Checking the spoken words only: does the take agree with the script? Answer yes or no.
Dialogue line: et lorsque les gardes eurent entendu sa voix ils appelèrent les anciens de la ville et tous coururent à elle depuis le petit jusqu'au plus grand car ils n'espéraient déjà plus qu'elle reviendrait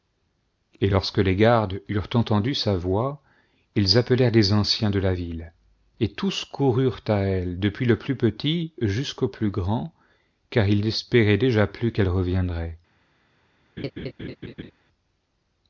no